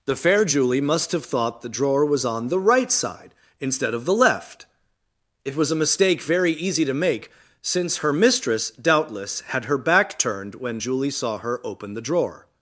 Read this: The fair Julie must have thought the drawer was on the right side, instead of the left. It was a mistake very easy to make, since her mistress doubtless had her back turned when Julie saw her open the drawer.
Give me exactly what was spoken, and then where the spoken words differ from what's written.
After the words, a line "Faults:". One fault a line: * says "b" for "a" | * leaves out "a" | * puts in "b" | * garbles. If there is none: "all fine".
The fair Julie must have thought the drawer was on the right side, instead of the left. It was a mistake very easy to make, since her mistress doubtless had her back turned when Julie saw her open the drawer.
Faults:
all fine